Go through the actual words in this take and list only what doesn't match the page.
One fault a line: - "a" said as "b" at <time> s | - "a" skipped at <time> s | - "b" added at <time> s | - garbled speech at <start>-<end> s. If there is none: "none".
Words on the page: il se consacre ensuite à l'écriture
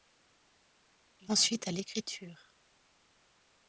- "se consacre" skipped at 1.3 s